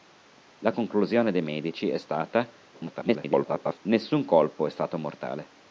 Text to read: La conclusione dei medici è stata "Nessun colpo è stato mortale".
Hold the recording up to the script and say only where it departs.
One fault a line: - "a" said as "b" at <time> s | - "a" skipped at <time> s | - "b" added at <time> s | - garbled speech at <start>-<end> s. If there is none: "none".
- garbled speech at 2.7-3.8 s